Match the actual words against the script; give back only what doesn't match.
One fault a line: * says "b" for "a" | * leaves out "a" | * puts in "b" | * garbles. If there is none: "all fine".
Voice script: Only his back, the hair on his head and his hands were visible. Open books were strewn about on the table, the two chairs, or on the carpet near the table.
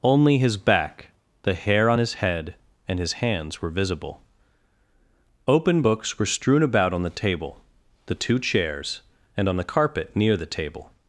* says "and" for "or"